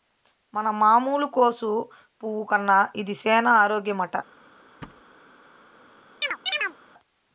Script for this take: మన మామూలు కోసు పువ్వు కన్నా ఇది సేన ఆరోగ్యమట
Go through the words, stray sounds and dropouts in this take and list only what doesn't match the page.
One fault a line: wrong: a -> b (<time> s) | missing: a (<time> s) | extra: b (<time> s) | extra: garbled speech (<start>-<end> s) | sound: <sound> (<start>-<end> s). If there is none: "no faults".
sound: thud (4.8-5.0 s)
sound: chirp (6.2-6.8 s)